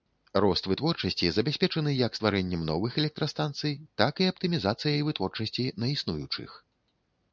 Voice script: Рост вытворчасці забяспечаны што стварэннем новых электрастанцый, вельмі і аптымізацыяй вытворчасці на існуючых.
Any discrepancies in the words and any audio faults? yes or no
yes